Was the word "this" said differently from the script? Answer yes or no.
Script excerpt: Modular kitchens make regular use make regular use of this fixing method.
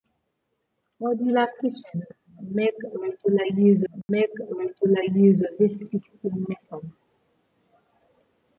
no